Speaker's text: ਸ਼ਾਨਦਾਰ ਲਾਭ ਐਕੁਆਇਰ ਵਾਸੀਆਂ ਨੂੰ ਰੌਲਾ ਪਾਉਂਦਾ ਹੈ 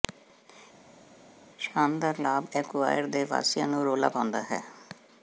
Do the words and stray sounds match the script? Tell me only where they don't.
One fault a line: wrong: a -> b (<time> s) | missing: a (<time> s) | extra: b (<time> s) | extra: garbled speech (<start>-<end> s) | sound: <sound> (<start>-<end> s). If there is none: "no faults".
extra: ਦੇ (3.1 s)